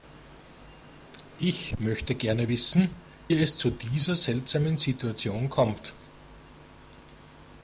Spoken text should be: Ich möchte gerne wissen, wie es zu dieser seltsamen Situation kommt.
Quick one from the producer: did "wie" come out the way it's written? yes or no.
no